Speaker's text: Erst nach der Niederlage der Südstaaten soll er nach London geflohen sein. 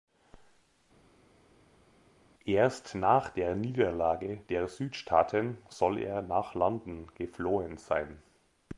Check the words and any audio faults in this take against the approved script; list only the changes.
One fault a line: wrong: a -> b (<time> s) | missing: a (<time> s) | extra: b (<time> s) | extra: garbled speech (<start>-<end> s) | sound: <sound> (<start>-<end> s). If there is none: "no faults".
no faults